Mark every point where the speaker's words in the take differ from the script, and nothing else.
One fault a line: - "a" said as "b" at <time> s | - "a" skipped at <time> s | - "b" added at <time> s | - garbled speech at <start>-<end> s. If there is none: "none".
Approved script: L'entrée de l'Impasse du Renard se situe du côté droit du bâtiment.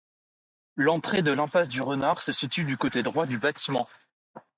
none